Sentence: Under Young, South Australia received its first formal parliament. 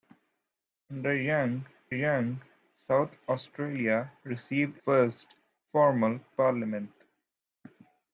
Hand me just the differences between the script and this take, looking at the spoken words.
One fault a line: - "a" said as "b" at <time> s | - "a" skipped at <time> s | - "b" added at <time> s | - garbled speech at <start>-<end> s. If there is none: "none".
- "Young" added at 1.9 s
- "its" skipped at 4.8 s